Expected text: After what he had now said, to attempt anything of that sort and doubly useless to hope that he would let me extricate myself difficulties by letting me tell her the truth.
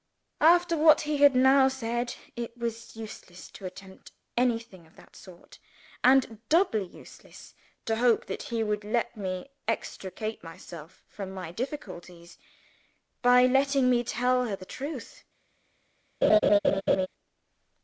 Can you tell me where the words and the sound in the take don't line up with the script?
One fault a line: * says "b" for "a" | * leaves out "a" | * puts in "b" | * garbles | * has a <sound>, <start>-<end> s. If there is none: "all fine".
* puts in "it was useless"
* puts in "from my"
* has a laugh, 16.2-17.1 s